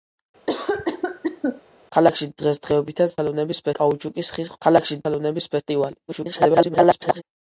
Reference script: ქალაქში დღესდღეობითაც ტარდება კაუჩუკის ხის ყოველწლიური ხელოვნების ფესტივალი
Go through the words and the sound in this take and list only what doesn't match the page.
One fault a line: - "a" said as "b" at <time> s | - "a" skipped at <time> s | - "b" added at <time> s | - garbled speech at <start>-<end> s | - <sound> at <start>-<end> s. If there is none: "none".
- cough at 0.5-1.6 s
- "ტარდება" said as "ხელოვნების" at 3.2 s
- "ყოველწლიური" said as "ქალაქში" at 4.7 s
- garbled speech at 6.1-7.2 s